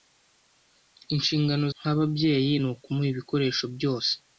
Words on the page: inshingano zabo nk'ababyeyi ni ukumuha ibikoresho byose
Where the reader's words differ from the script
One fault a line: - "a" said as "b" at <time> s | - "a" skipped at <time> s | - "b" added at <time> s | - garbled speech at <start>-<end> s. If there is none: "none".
- "zabo" skipped at 1.6 s